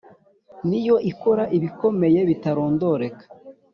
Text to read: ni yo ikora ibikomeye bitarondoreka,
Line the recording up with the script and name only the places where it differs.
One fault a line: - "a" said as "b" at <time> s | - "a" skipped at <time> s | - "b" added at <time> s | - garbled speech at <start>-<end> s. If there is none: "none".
none